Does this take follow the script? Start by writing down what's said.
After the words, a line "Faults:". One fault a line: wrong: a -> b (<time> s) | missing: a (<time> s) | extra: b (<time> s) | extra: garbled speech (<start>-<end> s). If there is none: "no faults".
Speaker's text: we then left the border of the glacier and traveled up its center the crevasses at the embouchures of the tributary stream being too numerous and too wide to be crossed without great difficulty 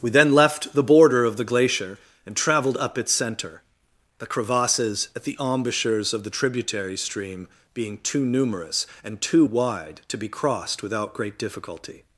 we then left the border of the glacier and traveled up its center the crevasses at the embouchures of the tributary stream being too numerous and too wide to be crossed without great difficulty
Faults:
no faults